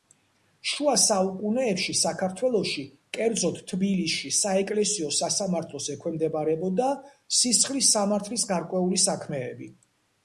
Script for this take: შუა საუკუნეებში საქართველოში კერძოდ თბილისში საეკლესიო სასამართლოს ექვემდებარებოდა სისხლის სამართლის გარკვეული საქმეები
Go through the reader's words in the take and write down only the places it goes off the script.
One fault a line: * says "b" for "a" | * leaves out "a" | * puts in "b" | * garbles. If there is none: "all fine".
all fine